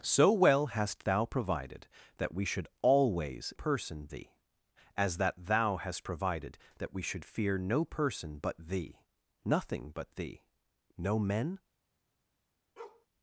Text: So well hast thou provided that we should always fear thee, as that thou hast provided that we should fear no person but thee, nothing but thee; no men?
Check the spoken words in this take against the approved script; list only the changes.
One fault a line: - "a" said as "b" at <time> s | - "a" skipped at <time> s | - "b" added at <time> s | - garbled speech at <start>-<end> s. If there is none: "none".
- "fear" said as "person" at 3.5 s